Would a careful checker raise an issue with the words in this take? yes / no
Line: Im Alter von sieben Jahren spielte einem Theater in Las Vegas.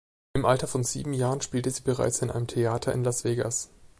yes